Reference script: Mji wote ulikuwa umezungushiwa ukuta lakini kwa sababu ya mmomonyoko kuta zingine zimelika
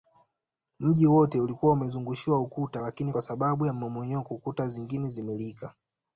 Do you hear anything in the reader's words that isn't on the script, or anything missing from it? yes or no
no